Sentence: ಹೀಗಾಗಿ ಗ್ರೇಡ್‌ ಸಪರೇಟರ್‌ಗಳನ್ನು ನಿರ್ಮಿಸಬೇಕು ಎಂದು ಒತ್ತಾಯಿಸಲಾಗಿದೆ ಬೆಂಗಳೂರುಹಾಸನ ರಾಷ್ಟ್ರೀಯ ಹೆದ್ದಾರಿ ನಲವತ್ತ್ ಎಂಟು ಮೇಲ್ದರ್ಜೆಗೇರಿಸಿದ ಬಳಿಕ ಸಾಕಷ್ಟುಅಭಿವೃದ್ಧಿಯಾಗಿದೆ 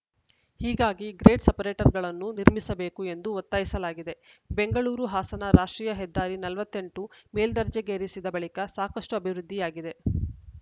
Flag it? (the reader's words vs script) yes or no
no